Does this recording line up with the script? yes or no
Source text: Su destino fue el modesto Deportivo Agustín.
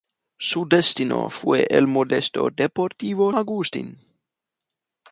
yes